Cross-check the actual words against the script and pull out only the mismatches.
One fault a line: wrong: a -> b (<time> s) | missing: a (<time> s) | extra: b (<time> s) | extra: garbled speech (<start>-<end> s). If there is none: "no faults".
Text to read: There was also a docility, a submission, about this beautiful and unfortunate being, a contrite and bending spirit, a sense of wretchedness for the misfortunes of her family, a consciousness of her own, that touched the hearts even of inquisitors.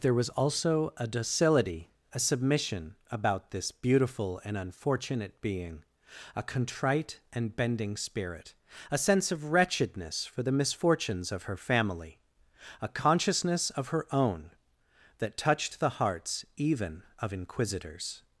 no faults